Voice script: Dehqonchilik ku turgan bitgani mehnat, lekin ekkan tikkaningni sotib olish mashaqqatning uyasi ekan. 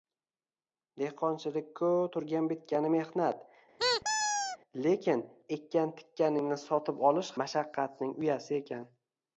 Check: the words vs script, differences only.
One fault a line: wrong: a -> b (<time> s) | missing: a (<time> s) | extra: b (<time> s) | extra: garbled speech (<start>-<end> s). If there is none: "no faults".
no faults